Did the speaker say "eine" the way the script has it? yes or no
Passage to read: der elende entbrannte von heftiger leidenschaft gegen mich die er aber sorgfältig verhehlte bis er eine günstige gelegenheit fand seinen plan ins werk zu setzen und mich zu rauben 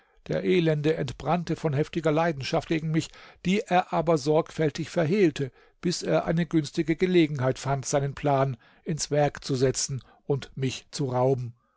yes